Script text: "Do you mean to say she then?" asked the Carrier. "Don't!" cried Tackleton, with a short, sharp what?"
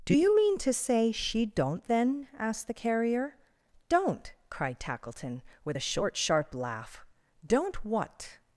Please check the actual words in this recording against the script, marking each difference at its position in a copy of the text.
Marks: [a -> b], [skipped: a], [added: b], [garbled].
"Do you mean to say she [added: don't] then?" asked the Carrier. "Don't!" cried Tackleton, with a short, sharp [added: laugh Don't] what?"